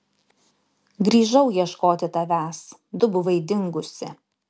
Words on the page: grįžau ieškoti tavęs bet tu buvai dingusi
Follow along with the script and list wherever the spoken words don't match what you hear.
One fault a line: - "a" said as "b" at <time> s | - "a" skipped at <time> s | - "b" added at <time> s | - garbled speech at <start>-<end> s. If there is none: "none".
- "bet" skipped at 2.6 s